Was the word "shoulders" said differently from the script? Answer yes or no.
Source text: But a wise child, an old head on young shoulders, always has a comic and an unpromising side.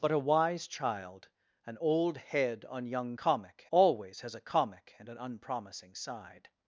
yes